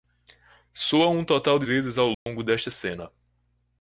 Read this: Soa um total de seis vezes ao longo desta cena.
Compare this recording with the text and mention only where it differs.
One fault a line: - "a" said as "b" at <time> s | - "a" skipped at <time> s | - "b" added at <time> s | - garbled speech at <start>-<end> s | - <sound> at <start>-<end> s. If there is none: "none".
- "seis" skipped at 1.7 s
- dropout at 2.1-2.3 s